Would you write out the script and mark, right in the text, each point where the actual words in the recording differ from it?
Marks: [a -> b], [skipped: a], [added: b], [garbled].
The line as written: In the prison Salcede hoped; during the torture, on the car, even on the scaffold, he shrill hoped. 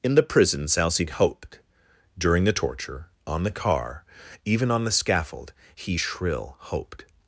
In the prison Salcede hoped; during the torture, on the car, even on the scaffold, he shrill hoped.